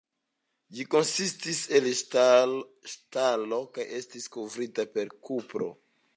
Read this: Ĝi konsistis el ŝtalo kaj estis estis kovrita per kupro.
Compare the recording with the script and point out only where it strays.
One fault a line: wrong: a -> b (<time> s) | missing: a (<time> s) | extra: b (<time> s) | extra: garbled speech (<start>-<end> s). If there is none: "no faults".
missing: estis (4.3 s)